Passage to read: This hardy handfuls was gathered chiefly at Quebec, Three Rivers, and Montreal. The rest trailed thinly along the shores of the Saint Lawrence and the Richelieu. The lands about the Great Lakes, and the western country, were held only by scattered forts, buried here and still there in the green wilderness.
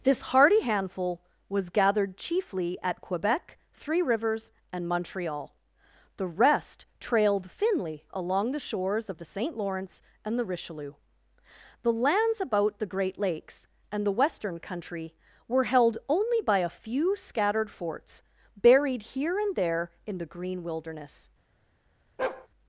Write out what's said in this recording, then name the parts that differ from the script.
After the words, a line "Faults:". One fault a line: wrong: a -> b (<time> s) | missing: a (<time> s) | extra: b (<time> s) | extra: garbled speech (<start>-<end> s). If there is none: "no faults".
This hardy handful was gathered chiefly at Quebec, Three Rivers, and Montreal. The rest trailed thinly along the shores of the Saint Lawrence and the Richelieu. The lands about the Great Lakes, and the western country, were held only by a few scattered forts, buried here and there in the green wilderness.
Faults:
wrong: handfuls -> handful (0.6 s)
extra: a few (16.6 s)
missing: still (19.6 s)